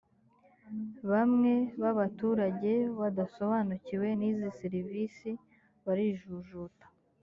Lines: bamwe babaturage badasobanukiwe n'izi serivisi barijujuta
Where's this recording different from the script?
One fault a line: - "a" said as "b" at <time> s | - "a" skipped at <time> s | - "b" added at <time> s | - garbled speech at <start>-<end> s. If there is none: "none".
none